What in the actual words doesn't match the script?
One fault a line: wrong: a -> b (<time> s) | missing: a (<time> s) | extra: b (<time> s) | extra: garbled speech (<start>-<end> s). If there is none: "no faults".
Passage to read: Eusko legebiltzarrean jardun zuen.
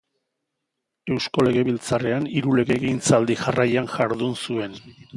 extra: hiru legegintzaldi jarraian (2.4 s)